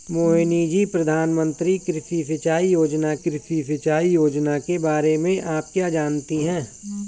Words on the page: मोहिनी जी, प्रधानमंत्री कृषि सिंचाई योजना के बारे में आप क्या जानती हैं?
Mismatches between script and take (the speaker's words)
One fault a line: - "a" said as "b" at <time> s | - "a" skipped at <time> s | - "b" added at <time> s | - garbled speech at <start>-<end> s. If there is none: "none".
- "कृषि सिंचाई योजना" added at 3.1 s